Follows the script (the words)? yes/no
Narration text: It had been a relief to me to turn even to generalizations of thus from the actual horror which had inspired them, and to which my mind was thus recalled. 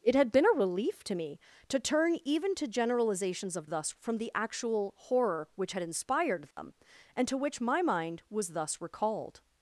yes